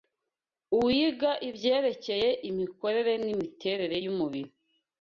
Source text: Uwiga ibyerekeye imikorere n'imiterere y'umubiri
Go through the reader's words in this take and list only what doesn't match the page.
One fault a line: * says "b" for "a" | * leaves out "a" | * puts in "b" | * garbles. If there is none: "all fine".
all fine